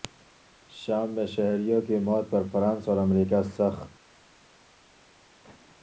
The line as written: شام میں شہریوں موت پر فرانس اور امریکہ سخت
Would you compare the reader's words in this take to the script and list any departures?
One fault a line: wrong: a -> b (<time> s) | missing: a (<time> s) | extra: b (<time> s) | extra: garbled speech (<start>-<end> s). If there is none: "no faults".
extra: کی (1.8 s)